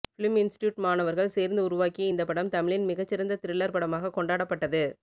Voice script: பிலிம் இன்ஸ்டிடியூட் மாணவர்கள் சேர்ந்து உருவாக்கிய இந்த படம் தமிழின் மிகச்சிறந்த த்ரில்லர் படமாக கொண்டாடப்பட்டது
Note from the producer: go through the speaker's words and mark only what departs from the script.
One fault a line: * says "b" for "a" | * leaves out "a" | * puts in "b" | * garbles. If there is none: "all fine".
all fine